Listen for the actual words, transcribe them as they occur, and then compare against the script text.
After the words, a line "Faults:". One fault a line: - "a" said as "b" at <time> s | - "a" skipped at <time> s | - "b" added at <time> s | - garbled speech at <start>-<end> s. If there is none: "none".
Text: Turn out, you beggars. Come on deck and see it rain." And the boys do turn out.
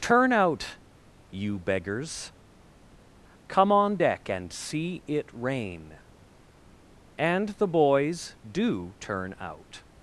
Turn out, you beggars. Come on deck and see it rain." And the boys do turn out.
Faults:
none